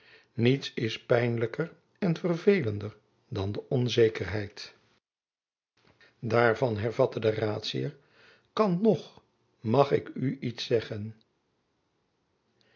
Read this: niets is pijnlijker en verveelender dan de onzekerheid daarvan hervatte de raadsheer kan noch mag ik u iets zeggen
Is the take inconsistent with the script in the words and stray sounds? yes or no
no